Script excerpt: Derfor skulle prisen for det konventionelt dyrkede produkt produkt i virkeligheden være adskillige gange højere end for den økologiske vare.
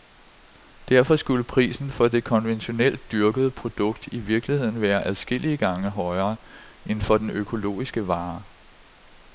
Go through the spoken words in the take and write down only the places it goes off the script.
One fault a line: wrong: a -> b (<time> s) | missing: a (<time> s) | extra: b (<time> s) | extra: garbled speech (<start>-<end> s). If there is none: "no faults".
missing: produkt (4.1 s)